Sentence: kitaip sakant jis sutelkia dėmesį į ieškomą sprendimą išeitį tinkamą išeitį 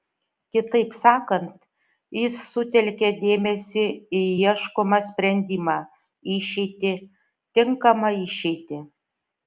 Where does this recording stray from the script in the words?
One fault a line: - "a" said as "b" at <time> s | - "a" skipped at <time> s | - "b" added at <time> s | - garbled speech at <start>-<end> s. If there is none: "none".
none